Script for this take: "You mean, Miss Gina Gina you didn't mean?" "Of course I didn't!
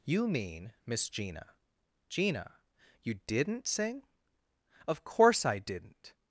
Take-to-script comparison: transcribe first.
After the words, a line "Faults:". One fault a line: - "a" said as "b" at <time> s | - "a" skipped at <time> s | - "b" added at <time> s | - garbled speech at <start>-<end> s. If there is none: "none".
"You mean, Miss Gina Gina you didn't sing?" "Of course I didn't!
Faults:
- "mean" said as "sing" at 3.7 s